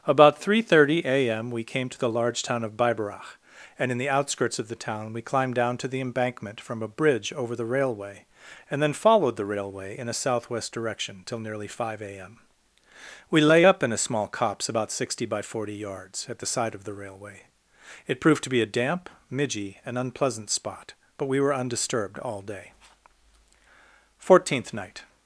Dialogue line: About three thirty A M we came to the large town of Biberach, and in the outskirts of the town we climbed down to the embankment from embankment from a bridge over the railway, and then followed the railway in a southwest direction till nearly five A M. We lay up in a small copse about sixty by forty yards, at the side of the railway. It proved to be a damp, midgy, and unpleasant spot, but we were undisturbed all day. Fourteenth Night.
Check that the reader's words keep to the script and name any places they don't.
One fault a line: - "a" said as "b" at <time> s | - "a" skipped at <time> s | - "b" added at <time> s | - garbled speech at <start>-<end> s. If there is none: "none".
- "embankment from" skipped at 6.8 s